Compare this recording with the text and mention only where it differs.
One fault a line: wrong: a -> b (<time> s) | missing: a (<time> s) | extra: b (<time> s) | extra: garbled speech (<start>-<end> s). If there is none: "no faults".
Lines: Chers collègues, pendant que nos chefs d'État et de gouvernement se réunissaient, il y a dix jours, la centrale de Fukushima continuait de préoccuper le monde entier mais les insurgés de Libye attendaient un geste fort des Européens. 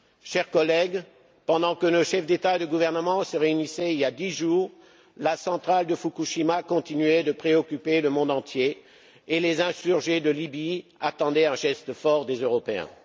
wrong: mais -> et (9.3 s)